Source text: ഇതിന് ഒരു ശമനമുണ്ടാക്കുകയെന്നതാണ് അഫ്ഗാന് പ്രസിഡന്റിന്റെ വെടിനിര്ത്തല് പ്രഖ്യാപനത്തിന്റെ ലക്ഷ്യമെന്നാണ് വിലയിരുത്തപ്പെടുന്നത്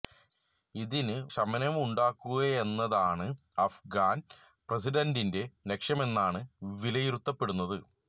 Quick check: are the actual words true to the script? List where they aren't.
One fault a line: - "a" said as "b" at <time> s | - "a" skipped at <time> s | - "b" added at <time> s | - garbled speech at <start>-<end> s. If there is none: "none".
- "ഒരു" skipped at 1.2 s
- "വെടിനിര്ത്തല് പ്രഖ്യാപനത്തിന്റെ" skipped at 5.4 s